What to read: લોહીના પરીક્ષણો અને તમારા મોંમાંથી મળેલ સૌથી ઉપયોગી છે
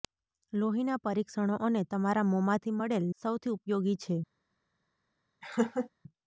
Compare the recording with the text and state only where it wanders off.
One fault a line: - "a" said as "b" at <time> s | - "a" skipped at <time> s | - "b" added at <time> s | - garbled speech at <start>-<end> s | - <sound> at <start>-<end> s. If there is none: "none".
- laugh at 5.4-5.9 s